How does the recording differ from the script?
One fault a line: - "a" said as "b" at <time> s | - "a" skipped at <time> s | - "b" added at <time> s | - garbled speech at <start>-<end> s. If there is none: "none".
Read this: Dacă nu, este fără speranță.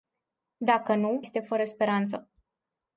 none